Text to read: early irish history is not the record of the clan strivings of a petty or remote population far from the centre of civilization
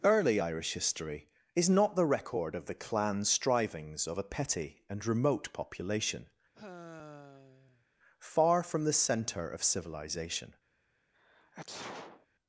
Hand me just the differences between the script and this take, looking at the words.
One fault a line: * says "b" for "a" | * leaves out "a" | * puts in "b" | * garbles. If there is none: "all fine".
* says "and" for "or"